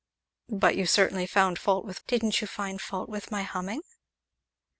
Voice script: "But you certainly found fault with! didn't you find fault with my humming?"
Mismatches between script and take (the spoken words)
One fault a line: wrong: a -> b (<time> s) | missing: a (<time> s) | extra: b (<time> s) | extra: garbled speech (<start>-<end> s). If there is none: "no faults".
no faults